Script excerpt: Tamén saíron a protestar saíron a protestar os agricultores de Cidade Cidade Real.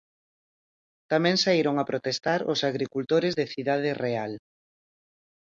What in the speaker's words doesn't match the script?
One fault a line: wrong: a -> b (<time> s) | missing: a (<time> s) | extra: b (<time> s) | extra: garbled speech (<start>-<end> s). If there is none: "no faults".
missing: saíron a protestar (2.4 s)
missing: Cidade (3.9 s)